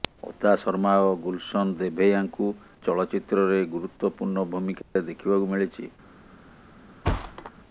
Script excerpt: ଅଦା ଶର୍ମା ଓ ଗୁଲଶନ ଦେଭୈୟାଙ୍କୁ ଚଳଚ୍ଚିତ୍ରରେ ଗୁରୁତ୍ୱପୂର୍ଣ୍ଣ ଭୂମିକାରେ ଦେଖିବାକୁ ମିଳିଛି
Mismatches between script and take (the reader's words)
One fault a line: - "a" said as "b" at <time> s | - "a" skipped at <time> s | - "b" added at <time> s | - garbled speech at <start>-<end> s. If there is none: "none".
none